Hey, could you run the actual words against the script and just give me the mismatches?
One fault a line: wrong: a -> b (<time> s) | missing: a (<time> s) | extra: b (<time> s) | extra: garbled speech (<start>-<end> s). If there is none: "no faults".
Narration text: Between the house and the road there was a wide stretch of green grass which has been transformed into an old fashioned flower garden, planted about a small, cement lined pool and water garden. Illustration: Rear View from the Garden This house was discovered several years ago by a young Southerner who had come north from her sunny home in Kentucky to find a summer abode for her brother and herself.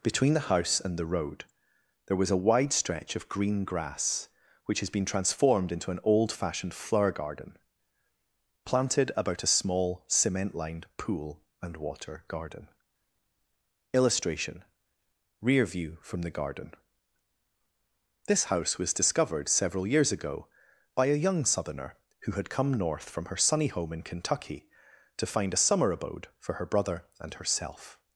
no faults